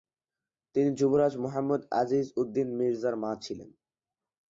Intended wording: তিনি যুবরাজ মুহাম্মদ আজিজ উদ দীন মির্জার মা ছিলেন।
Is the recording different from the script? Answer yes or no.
no